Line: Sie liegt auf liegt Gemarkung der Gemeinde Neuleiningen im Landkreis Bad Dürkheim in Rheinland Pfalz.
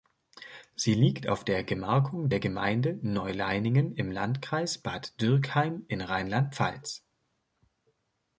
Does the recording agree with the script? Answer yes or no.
no